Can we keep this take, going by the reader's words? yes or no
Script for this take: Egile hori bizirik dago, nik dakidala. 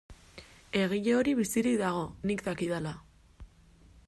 yes